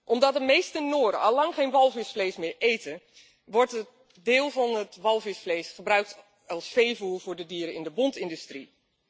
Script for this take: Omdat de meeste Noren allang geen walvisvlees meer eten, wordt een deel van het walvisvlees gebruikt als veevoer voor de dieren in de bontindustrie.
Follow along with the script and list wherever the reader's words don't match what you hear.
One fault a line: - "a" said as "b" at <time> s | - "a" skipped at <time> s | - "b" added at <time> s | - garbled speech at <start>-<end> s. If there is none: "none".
none